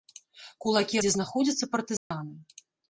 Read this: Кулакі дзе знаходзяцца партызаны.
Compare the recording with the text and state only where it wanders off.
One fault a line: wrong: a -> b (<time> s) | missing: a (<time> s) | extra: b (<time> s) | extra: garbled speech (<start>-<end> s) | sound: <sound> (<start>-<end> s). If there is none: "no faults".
sound: dropout (2.0-2.1 s)